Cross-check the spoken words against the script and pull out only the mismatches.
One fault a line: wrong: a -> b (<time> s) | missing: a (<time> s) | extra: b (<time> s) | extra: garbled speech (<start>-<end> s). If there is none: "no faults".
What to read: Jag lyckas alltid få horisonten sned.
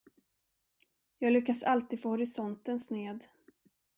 no faults